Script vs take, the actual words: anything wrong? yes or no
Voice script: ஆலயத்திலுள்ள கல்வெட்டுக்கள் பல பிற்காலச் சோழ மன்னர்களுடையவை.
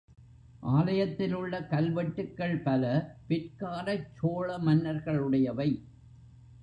no